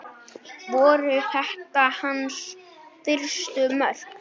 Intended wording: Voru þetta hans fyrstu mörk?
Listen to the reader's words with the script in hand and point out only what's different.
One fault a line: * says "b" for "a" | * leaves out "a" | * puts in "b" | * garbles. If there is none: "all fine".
all fine